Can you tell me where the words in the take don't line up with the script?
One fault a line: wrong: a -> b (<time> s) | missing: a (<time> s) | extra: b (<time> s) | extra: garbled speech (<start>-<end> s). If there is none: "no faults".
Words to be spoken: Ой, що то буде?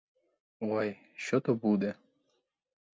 no faults